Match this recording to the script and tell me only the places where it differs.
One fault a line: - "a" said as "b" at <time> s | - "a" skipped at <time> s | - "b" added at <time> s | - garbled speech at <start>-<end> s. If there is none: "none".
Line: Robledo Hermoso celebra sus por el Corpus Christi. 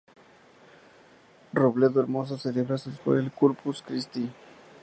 none